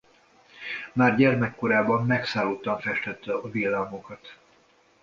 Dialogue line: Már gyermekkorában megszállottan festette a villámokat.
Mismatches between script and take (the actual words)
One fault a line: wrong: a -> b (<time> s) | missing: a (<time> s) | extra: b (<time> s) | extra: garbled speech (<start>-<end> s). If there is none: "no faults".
no faults